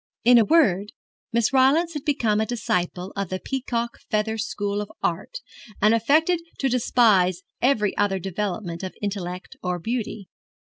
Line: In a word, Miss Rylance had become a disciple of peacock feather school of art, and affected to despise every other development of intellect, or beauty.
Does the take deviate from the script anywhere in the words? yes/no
yes